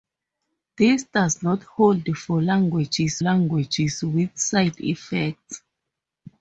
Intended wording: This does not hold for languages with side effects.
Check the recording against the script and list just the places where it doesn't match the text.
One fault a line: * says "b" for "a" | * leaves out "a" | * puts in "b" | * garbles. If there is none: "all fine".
* puts in "languages"